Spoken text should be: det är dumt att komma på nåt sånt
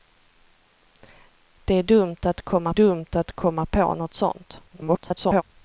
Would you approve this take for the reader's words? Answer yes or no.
no